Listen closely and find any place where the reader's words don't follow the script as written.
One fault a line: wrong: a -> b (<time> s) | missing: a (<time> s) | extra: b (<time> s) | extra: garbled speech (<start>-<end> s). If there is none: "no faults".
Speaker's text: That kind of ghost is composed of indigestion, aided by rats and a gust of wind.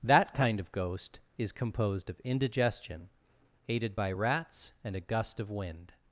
no faults